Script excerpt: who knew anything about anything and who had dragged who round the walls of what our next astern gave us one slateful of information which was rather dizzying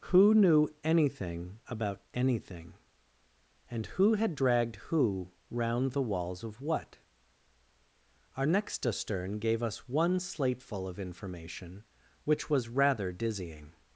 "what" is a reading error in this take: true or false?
false